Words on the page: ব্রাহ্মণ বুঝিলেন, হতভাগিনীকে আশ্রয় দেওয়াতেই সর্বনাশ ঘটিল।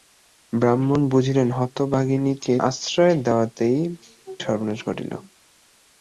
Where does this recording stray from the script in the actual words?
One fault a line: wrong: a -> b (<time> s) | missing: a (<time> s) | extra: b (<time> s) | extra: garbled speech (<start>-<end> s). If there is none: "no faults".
no faults